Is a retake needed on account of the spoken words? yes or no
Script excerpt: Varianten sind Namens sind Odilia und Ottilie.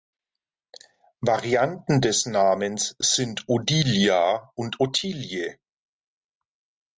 yes